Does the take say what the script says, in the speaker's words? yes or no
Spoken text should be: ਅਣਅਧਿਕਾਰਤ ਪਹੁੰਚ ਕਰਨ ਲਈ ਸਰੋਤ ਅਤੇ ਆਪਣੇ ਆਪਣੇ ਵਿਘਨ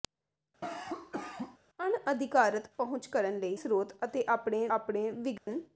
yes